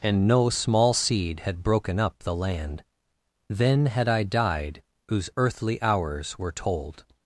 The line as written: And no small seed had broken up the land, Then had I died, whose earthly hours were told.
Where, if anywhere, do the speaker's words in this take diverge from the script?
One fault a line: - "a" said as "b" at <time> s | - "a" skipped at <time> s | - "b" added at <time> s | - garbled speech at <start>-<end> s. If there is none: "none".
none